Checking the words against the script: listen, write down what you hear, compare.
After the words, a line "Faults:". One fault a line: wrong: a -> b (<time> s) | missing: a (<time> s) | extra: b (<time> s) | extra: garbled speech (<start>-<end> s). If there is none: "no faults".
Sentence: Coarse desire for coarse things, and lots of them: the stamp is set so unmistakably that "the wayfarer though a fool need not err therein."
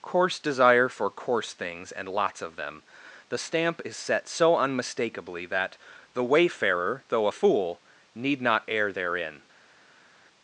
Coarse desire for coarse things, and lots of them: the stamp is set so unmistakably that "the wayfarer though a fool need not err therein."
Faults:
no faults